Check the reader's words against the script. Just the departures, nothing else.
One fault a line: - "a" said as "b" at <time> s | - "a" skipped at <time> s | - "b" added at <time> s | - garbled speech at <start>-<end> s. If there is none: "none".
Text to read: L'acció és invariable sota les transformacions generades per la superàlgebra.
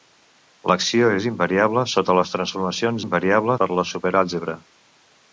- "generades" said as "invariable" at 3.0 s